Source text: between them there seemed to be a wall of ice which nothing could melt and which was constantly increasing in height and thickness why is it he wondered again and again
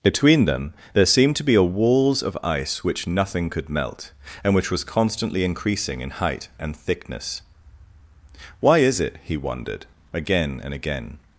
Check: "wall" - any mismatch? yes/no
yes